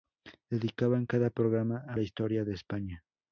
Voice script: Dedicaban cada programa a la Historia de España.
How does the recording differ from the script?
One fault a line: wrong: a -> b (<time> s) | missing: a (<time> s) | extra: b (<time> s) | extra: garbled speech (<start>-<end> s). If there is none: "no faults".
no faults